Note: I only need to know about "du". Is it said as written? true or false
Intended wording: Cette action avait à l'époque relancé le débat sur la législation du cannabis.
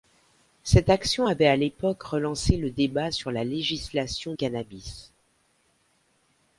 false